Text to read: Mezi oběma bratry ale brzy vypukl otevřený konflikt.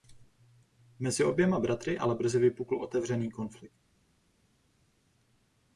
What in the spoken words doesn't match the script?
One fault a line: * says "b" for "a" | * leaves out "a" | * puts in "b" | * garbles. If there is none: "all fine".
all fine